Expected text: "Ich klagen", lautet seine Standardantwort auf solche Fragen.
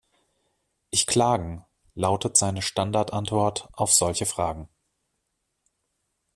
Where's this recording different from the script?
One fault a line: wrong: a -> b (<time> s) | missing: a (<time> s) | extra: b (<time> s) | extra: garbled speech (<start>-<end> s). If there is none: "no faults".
no faults